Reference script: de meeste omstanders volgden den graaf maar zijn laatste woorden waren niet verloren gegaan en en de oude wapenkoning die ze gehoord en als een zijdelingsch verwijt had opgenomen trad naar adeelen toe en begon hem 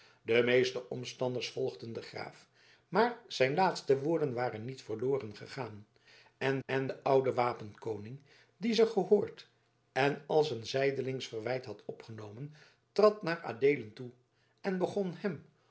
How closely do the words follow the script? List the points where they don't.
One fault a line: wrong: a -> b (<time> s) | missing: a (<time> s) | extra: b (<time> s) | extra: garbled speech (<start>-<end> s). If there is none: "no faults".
no faults